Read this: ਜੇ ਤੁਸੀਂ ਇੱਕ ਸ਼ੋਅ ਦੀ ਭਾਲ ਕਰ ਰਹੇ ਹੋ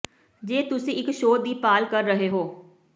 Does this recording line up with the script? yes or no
yes